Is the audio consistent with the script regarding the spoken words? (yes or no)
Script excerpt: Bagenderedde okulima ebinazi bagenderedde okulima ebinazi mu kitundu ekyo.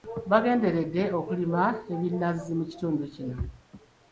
no